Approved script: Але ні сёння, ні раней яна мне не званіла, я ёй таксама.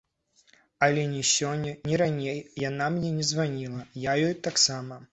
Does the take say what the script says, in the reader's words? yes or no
yes